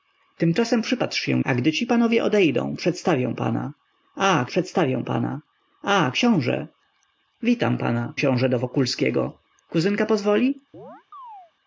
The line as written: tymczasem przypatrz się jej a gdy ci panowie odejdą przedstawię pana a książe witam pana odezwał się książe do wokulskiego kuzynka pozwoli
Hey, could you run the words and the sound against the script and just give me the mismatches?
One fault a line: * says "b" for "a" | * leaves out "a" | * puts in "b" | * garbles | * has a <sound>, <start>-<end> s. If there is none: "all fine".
* leaves out "jej"
* puts in "przedstawię pana a"
* leaves out "odezwał się"
* has a chirp, 10.7-11.5 s